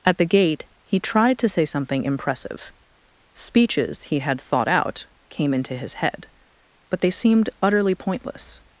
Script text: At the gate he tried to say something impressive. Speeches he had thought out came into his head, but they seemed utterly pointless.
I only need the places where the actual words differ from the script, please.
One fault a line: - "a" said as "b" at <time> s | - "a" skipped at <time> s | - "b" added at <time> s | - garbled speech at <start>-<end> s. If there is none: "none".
none